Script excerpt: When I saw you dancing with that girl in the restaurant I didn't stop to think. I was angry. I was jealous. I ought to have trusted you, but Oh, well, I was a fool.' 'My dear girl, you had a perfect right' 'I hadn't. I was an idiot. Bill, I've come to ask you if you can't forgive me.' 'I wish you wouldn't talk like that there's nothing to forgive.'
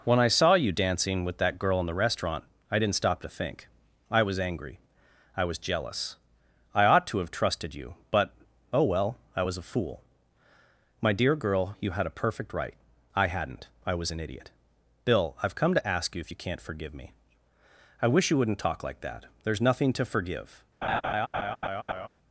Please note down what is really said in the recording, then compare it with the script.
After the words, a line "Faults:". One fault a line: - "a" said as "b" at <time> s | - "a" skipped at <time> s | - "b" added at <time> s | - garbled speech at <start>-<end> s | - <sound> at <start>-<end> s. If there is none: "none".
When I saw you dancing with that girl in the restaurant I didn't stop to think. I was angry. I was jealous. I ought to have trusted you, but Oh, well, I was a fool.' 'My dear girl, you had a perfect right' 'I hadn't. I was an idiot. Bill, I've come to ask you if you can't forgive me.' 'I wish you wouldn't talk like that there's nothing to forgive.'
Faults:
- laugh at 20.8-22.1 s